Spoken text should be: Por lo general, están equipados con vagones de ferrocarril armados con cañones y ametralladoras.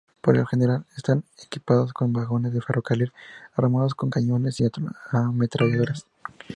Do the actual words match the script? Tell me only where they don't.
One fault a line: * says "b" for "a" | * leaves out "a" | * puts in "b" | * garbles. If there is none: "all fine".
all fine